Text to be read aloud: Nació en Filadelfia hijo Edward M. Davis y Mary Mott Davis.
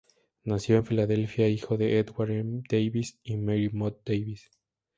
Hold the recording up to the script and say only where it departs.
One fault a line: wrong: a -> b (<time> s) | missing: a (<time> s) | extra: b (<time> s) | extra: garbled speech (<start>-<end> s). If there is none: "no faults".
extra: de (1.8 s)